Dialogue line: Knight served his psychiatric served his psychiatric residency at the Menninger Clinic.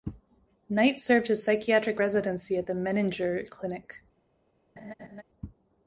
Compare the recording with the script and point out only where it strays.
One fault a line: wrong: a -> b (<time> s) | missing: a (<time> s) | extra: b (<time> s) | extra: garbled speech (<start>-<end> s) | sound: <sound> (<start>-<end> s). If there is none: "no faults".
missing: served his psychiatric (2.0 s)
sound: laugh (4.8-5.2 s)